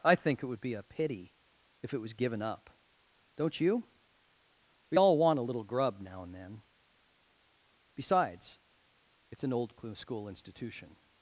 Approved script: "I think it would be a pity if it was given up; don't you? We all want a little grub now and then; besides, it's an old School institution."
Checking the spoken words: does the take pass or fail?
pass